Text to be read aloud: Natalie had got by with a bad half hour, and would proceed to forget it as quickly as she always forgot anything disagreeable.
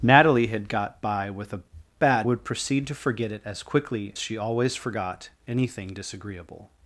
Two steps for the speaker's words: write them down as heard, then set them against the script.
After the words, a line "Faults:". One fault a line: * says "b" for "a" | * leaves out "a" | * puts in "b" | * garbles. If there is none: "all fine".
Natalie had got by with a bad would proceed to forget it as quickly she always forgot anything disagreeable.
Faults:
* leaves out "half hour and"
* leaves out "as"